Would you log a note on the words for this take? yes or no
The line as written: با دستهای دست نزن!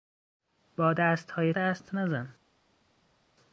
no